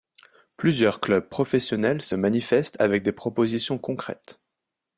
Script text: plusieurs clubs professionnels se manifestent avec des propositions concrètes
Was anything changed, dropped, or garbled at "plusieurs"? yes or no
no